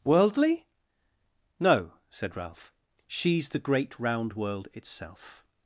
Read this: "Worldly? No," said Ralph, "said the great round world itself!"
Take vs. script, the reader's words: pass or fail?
fail